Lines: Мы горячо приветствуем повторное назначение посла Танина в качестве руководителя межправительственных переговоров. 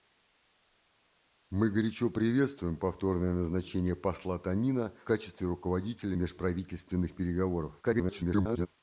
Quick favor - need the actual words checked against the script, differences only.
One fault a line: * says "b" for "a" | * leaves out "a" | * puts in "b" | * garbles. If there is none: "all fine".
* leaves out "в"
* garbles